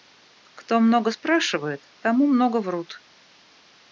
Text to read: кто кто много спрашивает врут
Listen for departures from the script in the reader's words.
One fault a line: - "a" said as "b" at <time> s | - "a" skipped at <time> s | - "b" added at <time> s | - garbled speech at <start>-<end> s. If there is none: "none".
- "кто" skipped at 0.8 s
- "тому много" added at 2.0 s